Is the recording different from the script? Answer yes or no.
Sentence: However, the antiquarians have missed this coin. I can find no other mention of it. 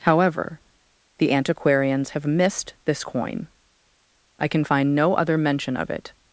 no